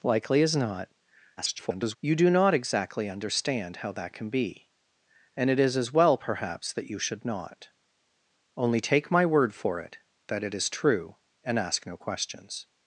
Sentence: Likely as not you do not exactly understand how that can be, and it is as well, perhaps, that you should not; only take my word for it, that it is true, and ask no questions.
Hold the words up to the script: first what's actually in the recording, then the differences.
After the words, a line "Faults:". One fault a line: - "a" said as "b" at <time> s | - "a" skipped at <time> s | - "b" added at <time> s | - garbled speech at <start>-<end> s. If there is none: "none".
Likely as not [garbled] you do not exactly understand how that can be, and it is as well, perhaps, that you should not; only take my word for it, that it is true, and ask no questions.
Faults:
- garbled speech at 1.4-2.0 s